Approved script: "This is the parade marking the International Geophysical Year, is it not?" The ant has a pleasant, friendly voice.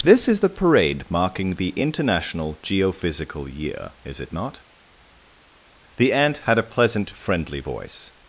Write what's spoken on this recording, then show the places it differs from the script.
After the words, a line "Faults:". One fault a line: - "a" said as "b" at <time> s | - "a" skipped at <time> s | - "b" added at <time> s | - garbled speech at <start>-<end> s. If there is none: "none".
"This is the parade marking the International Geophysical Year, is it not?" The ant had a pleasant, friendly voice.
Faults:
- "has" said as "had" at 6.4 s